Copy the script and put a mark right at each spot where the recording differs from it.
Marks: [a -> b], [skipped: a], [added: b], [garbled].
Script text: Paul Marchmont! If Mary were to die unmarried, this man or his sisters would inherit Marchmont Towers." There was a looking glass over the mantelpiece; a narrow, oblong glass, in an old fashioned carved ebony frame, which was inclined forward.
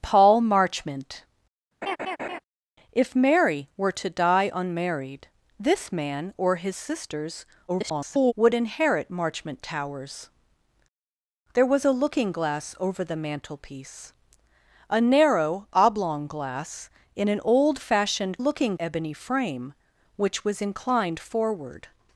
Paul Marchmont! If Mary were to die unmarried, this man or his sisters [garbled] would inherit Marchmont Towers." There was a looking glass over the mantelpiece; a narrow, oblong glass, in an old fashioned [carved -> looking] ebony frame, which was inclined forward.